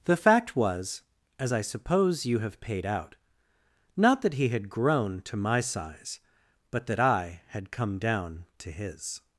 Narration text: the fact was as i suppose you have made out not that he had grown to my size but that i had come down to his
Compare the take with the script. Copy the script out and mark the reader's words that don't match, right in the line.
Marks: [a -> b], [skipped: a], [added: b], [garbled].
the fact was as i suppose you have [made -> paid] out not that he had grown to my size but that i had come down to his